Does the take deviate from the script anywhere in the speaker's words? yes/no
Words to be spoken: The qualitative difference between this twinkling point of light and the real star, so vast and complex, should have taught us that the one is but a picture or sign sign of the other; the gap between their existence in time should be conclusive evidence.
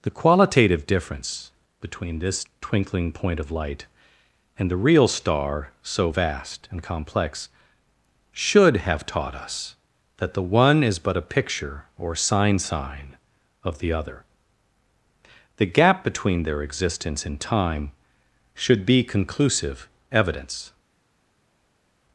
no